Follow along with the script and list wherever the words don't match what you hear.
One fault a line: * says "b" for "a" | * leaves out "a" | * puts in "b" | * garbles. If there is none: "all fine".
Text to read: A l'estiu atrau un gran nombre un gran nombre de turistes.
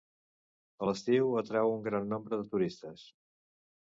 * leaves out "un gran nombre"